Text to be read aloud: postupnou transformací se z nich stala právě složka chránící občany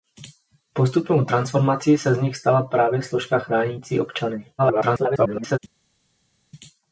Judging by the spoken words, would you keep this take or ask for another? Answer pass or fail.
fail